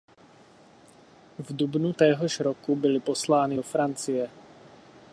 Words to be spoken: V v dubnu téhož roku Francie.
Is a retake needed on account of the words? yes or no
yes